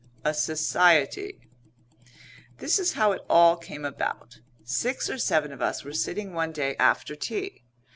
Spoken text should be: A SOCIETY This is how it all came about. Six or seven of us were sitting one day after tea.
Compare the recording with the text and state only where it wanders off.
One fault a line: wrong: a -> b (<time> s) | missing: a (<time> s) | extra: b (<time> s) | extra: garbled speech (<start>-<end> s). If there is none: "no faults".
no faults